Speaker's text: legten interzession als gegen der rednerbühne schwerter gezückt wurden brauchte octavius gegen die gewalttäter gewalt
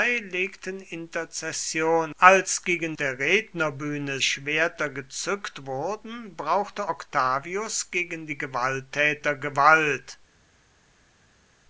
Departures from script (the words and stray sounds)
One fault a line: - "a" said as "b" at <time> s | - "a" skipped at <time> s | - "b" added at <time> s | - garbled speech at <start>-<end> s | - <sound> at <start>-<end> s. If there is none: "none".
none